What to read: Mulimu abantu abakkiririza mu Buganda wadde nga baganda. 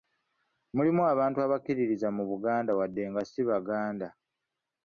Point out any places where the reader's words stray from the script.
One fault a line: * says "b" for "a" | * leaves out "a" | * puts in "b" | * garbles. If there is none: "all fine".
* puts in "si"